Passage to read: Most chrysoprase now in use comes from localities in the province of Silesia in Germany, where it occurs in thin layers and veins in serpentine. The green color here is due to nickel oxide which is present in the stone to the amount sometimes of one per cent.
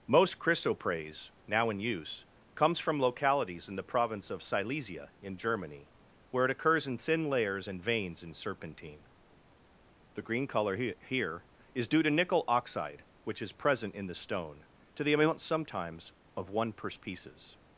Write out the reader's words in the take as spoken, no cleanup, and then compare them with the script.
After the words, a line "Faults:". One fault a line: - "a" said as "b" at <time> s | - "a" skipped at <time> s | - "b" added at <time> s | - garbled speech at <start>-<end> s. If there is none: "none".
Most chrysoprase now in use comes from localities in the province of Silesia in Germany, where it occurs in thin layers and veins in serpentine. The green color he here is due to nickel oxide which is present in the stone to the amount sometimes of one per pieces.
Faults:
- "he" added at 10.8 s
- "cent" said as "pieces" at 16.9 s